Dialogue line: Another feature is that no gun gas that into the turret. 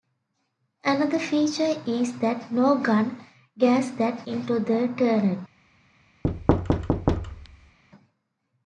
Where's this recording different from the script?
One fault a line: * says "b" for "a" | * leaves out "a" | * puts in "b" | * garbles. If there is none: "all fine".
all fine